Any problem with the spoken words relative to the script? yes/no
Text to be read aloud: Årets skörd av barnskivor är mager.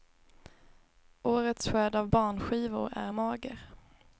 no